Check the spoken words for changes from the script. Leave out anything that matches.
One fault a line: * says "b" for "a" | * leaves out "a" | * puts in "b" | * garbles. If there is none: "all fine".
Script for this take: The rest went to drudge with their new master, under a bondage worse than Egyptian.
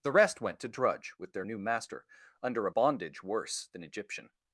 all fine